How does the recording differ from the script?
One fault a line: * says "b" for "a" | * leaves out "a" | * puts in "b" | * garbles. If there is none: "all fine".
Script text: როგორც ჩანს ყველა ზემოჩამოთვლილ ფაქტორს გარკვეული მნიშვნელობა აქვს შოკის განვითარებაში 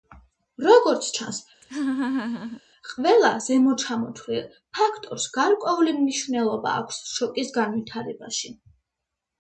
all fine